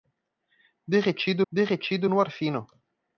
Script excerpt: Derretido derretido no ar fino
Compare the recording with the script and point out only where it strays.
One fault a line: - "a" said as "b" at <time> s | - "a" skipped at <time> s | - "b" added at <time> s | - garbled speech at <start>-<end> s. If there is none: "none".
none